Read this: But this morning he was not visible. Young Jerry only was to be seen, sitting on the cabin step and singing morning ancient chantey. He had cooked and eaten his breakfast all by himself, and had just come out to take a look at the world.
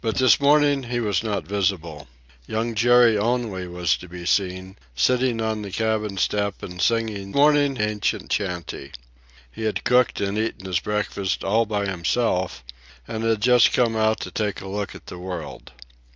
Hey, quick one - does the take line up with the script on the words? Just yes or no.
yes